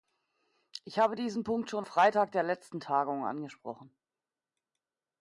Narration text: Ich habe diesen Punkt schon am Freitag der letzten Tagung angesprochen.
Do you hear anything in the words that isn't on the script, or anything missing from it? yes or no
yes